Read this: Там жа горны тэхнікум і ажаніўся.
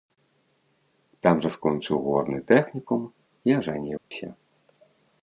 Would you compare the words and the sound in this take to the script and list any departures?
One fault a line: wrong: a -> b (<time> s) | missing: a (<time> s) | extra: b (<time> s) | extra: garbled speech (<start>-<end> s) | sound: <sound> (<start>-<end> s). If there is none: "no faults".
extra: скончыў (1.6 s)
sound: dropout (4.0-4.1 s)